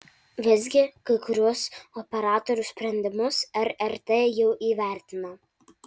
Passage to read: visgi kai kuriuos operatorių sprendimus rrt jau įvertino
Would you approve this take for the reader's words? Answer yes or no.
yes